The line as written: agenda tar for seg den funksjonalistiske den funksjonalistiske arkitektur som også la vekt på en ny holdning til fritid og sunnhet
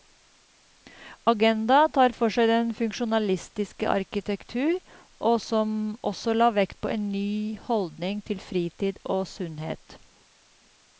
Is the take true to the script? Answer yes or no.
no